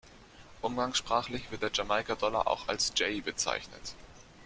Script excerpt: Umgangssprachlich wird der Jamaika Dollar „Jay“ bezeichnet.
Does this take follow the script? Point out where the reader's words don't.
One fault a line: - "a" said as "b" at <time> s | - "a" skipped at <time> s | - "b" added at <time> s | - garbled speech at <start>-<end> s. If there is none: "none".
- "auch als" added at 2.5 s